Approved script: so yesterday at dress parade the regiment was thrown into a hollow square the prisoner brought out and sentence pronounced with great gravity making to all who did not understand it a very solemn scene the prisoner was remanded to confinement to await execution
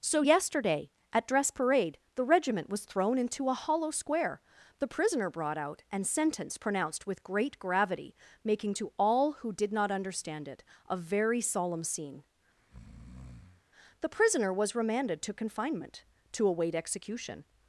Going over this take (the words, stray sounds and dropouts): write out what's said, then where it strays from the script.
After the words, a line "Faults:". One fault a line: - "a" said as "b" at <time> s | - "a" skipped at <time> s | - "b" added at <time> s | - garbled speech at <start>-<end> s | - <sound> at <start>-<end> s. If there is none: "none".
so yesterday at dress parade the regiment was thrown into a hollow square the prisoner brought out and sentence pronounced with great gravity making to all who did not understand it a very solemn scene the prisoner was remanded to confinement to await execution
Faults:
- breath at 12.6-13.6 s